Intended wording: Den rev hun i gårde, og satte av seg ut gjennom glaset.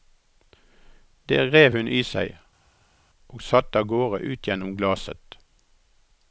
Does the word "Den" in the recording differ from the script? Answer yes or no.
yes